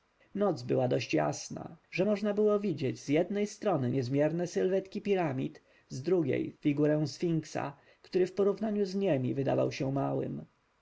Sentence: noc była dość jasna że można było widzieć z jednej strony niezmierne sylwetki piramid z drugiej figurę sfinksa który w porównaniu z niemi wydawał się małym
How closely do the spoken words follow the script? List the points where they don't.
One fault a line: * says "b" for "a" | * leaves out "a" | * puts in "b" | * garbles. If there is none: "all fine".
all fine